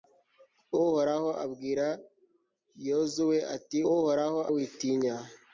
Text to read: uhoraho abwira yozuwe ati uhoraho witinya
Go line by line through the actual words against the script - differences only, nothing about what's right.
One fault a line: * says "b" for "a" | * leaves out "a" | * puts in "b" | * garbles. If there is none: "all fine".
all fine